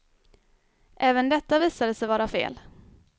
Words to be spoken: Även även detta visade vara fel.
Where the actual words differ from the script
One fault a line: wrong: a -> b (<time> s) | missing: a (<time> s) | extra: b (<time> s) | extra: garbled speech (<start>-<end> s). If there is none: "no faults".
missing: även (1.3 s)
extra: sig (1.9 s)